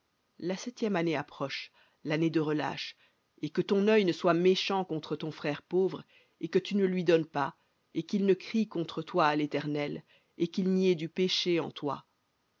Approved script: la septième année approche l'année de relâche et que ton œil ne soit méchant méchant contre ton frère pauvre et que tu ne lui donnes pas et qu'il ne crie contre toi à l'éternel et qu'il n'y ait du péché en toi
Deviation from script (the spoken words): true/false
true